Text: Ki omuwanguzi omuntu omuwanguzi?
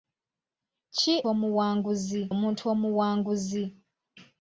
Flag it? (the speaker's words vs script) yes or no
no